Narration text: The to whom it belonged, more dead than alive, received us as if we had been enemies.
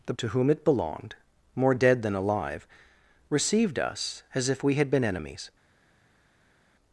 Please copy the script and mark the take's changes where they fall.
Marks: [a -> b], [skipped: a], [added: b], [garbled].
The to whom it belonged, more dead than alive, received us as if we had been enemies.